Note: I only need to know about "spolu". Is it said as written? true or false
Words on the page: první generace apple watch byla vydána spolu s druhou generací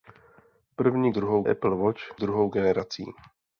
false